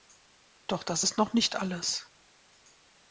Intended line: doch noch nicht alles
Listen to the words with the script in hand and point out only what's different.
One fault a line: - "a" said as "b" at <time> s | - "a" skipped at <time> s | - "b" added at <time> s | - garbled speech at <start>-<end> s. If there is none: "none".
- "das ist" added at 0.8 s